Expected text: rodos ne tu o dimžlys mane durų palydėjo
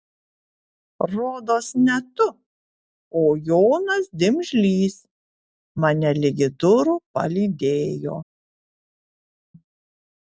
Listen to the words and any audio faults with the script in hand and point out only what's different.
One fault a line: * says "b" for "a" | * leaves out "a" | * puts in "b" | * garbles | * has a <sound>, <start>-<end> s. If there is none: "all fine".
* puts in "jonas"
* puts in "ligi"